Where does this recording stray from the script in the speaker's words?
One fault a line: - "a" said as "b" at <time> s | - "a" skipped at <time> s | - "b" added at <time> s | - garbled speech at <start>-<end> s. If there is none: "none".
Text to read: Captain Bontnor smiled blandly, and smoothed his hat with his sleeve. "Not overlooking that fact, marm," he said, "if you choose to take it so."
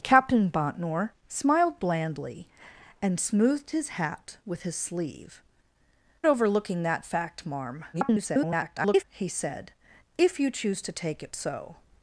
- "Not" skipped at 5.4 s
- garbled speech at 7.9-9.0 s